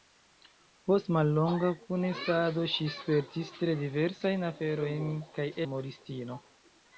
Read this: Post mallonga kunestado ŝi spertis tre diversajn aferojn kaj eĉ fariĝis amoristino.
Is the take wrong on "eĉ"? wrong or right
wrong